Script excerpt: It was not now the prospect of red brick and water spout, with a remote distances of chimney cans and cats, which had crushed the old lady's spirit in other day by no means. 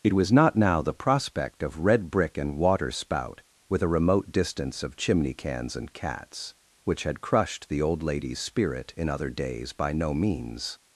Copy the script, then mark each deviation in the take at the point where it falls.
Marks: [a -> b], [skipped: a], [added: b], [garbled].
It was not now the prospect of red brick and water spout, with a remote [distances -> distance] of chimney cans and cats, which had crushed the old lady's spirit in other [day -> days] by no means.